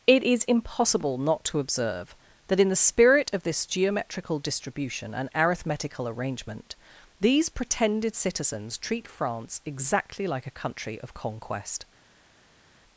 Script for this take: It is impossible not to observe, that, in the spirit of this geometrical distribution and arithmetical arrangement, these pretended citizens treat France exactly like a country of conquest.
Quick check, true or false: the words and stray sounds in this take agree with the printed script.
true